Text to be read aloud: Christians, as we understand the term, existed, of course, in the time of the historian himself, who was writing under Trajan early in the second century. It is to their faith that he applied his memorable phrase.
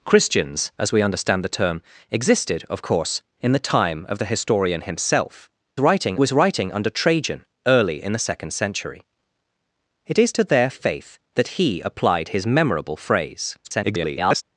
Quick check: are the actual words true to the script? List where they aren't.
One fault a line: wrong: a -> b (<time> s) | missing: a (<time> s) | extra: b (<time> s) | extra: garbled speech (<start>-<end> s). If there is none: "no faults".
wrong: who -> writing (5.8 s)
extra: garbled speech (13.6-14.4 s)